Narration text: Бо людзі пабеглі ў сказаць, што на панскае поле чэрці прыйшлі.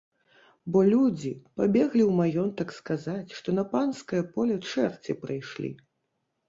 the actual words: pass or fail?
fail